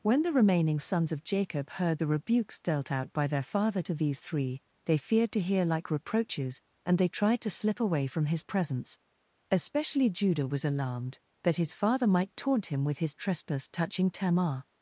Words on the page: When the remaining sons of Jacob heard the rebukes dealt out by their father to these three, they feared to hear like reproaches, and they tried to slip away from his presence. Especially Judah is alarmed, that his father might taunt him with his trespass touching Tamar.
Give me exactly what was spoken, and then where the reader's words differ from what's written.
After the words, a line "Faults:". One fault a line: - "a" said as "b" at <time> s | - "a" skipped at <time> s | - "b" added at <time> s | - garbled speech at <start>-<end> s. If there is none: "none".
When the remaining sons of Jacob heard the rebukes dealt out by their father to these three, they feared to hear like reproaches, and they tried to slip away from his presence. Especially Judah was alarmed, that his father might taunt him with his trespass touching Tamar.
Faults:
- "is" said as "was" at 10.5 s